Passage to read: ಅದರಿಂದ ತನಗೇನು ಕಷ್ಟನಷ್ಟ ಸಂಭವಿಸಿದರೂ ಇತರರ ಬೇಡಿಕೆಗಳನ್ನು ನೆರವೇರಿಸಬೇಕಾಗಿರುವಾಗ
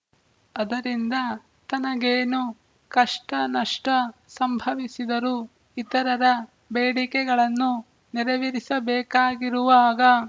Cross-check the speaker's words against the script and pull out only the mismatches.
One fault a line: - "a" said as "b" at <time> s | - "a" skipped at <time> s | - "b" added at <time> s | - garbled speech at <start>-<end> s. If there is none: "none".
none